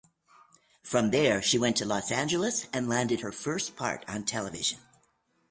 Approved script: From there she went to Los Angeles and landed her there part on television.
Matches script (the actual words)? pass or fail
fail